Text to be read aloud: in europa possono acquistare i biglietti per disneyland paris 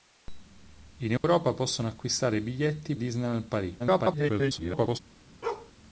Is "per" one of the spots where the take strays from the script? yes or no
yes